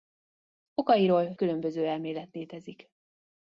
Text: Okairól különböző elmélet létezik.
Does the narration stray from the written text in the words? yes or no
no